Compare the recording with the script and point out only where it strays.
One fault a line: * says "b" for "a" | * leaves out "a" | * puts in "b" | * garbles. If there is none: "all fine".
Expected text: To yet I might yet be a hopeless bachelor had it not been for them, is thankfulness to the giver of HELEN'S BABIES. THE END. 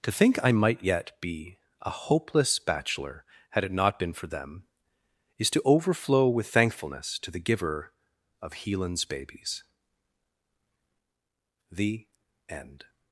* says "think" for "yet"
* puts in "to overflow with"